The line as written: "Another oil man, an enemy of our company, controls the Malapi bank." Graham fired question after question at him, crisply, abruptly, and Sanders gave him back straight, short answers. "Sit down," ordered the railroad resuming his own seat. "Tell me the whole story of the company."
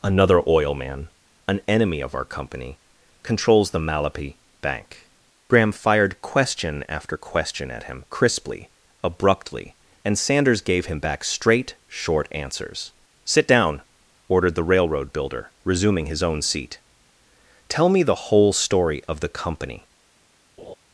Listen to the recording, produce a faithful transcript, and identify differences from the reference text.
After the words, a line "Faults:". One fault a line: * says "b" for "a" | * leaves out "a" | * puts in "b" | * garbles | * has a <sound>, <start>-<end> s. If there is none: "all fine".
"Another oil man, an enemy of our company, controls the Malapi bank." Graham fired question after question at him, crisply, abruptly, and Sanders gave him back straight, short answers. "Sit down," ordered the railroad builder, resuming his own seat. "Tell me the whole story of the company."
Faults:
* puts in "builder"
* has a laugh, 20.6-20.8 s